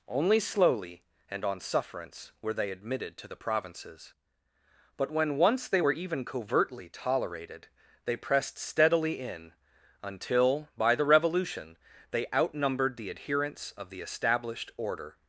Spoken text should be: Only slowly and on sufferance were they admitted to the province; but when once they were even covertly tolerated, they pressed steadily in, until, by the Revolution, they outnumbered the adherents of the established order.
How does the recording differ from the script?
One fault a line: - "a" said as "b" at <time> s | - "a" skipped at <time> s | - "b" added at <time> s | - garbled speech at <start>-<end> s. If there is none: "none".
- "province" said as "provinces" at 3.4 s